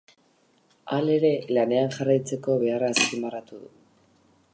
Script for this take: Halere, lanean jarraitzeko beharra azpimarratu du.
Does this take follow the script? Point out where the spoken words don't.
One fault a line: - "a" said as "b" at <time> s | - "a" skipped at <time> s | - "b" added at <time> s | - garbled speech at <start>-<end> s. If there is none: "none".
none